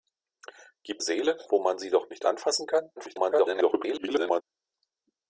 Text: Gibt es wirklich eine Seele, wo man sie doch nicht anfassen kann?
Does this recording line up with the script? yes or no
no